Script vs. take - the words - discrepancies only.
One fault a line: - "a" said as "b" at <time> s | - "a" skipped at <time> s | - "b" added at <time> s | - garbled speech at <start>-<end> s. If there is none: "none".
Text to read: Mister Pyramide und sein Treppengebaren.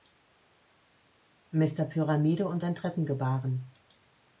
none